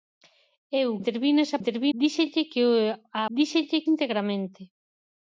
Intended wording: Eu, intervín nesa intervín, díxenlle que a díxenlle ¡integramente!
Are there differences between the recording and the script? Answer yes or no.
no